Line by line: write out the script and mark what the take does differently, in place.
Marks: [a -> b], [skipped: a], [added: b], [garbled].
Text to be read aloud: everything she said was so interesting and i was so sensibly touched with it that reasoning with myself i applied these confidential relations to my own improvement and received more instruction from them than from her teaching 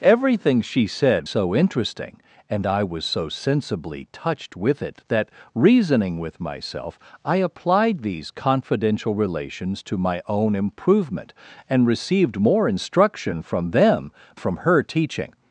everything she said [skipped: was] so interesting and i was so sensibly touched with it that reasoning with myself i applied these confidential relations to my own improvement and received more instruction from them [skipped: than] from her teaching